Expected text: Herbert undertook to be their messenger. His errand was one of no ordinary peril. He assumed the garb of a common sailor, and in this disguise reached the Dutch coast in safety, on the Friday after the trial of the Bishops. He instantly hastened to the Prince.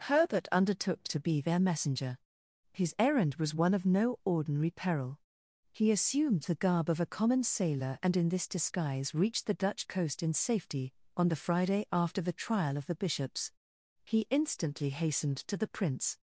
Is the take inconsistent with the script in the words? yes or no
no